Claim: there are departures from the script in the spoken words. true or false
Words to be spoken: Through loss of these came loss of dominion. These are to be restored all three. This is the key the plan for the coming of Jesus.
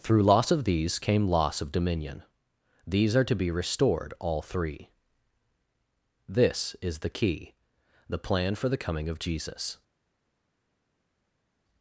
false